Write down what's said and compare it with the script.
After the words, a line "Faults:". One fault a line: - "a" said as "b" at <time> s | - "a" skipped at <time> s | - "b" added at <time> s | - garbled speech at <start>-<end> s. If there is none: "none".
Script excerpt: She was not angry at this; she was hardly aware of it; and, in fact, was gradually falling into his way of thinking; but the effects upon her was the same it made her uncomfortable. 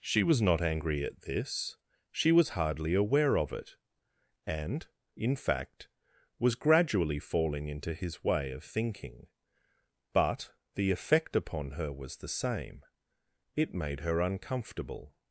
She was not angry at this; she was hardly aware of it; and, in fact, was gradually falling into his way of thinking; but the effect upon her was the same it made her uncomfortable.
Faults:
- "effects" said as "effect" at 10.9 s